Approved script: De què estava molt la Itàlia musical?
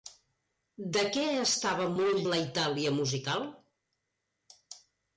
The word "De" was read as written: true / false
true